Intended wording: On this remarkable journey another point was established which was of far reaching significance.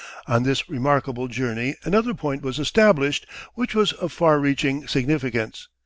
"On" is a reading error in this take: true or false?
false